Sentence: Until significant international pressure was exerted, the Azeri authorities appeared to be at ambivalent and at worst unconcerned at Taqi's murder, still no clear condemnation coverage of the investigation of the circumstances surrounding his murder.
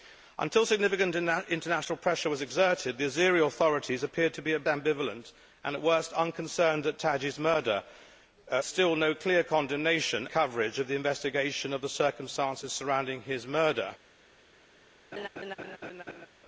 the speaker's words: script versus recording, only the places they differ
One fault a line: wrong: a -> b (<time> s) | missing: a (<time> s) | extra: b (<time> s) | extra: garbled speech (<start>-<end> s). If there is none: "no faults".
no faults